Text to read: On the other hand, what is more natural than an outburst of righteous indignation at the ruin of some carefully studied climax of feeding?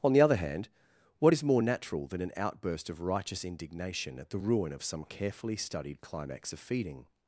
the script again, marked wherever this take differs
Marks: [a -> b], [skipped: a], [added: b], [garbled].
On the other hand, what is more natural than an outburst of righteous indignation at the ruin of some carefully studied climax of feeding?